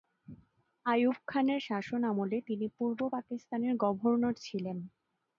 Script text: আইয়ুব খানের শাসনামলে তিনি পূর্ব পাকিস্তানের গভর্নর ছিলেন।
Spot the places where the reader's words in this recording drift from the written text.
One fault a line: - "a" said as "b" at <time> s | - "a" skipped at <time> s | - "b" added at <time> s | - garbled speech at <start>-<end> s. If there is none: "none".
none